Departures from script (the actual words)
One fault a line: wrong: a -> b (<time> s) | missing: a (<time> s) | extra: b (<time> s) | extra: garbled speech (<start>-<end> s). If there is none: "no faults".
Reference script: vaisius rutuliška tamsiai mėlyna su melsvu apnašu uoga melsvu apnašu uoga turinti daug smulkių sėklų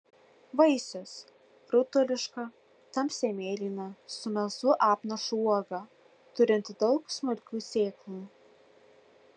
missing: melsvu apnašu uoga (5.8 s)